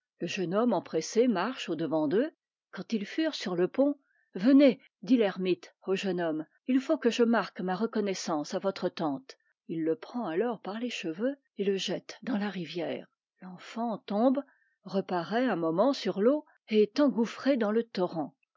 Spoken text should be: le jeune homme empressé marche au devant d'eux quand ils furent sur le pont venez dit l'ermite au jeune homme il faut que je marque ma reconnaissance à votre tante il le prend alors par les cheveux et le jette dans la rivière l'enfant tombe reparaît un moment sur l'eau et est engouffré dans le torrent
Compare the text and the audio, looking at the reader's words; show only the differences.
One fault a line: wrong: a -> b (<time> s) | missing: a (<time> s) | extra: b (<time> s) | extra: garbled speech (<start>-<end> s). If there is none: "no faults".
no faults